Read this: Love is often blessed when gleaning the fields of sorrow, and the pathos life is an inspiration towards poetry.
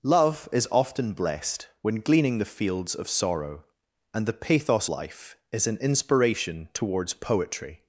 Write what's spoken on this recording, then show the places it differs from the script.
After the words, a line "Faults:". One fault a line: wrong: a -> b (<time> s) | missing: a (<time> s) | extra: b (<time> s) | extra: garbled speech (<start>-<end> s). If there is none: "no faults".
Love is often blessed when gleaning the fields of sorrow, and the pathos life is an inspiration towards poetry.
Faults:
no faults